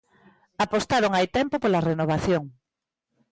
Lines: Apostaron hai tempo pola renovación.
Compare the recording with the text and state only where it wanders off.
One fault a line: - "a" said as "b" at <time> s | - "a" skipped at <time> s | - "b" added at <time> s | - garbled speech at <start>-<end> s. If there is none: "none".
none